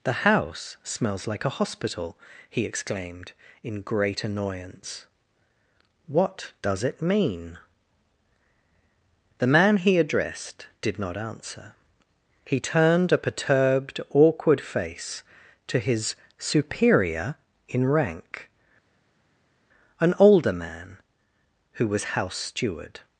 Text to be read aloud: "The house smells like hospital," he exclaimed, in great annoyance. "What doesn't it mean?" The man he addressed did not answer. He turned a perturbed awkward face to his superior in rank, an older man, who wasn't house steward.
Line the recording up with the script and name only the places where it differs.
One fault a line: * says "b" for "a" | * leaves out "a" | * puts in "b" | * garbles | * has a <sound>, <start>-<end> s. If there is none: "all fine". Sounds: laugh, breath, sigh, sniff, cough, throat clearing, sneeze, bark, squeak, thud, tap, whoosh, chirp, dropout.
* puts in "a"
* says "does" for "doesn't"
* says "was" for "wasn't"